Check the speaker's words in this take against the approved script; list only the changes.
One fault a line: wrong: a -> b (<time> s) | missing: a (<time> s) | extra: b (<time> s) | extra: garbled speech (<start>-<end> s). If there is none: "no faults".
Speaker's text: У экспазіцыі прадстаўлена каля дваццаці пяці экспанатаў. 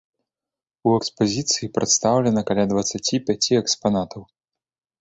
no faults